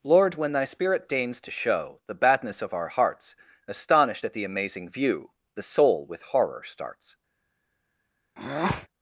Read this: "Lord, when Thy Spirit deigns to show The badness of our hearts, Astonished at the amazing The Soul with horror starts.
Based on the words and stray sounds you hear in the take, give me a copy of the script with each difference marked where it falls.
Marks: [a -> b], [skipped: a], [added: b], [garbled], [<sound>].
"Lord, when Thy Spirit deigns to show The badness of our hearts, Astonished at the amazing [added: view] The Soul with horror starts. [breath]